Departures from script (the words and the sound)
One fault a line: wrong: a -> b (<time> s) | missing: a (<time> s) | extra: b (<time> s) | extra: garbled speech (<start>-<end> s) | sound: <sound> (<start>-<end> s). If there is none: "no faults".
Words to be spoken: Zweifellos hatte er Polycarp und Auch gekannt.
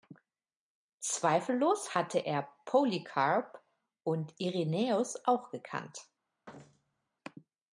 extra: Irenäus (4.4 s)
sound: thud (6.5-7.1 s)